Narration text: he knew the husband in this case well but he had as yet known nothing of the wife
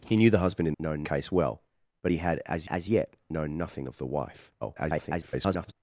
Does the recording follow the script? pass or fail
fail